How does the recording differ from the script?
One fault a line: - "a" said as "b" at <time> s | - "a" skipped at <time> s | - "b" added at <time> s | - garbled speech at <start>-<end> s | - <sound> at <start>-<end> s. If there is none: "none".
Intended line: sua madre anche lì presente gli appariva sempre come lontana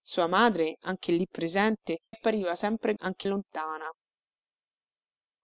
- "gli" skipped at 2.0 s
- "come" said as "anche" at 3.0 s